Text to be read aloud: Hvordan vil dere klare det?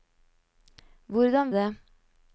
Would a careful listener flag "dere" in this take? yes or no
yes